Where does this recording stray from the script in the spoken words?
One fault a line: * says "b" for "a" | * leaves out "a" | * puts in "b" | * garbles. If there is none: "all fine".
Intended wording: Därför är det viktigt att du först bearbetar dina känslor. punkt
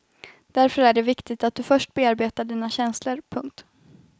all fine